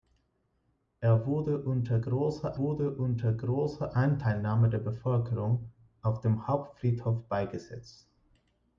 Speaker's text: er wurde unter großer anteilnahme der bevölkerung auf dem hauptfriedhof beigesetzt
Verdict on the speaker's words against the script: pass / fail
fail